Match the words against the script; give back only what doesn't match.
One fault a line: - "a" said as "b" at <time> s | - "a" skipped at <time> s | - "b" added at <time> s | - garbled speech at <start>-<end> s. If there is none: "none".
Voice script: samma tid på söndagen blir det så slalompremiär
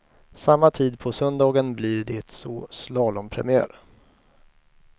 none